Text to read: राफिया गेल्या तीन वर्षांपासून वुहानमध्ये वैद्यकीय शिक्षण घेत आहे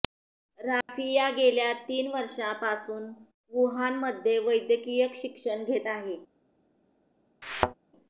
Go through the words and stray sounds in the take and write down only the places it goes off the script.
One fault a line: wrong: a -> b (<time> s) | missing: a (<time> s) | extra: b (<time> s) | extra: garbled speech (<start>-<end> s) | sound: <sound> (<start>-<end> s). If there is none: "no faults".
sound: dropout (0.8-0.9 s)
sound: thud (7.4-7.7 s)